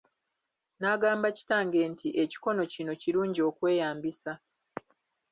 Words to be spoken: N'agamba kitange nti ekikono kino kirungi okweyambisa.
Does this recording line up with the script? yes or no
yes